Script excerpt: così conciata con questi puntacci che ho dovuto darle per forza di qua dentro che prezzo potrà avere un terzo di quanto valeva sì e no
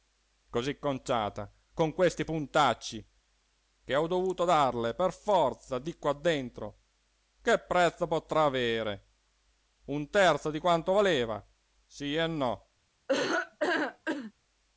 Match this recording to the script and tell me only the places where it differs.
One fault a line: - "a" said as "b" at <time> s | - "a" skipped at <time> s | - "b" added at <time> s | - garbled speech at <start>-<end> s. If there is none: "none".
none